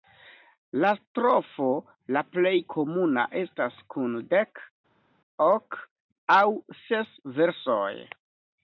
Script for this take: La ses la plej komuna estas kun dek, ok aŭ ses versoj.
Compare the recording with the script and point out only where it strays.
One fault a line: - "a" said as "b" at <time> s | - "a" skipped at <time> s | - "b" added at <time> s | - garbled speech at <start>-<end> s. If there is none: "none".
- "ses" said as "strofo" at 1.0 s